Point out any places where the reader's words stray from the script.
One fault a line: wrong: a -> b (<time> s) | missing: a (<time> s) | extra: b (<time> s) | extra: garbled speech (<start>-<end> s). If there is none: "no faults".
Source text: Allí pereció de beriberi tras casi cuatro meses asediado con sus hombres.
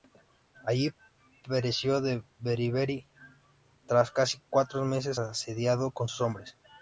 no faults